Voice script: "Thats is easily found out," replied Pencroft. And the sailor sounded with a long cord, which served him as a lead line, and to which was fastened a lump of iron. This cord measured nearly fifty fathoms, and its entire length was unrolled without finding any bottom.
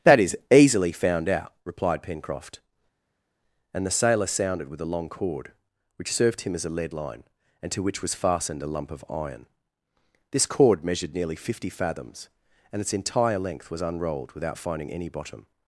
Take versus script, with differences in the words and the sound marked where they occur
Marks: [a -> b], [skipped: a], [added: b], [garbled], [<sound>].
["Thats -> That] is easily found out," replied Pencroft. And the sailor sounded with a long cord, which served him as a lead line, and to which was fastened a lump of iron. This cord measured nearly fifty fathoms, and its entire length was unrolled without finding any bottom.